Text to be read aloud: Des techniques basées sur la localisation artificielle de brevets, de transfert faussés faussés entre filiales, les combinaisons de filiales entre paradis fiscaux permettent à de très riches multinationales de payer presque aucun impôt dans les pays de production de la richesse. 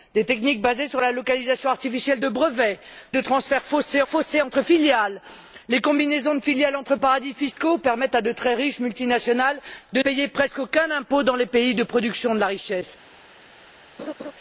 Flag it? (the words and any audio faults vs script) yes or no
yes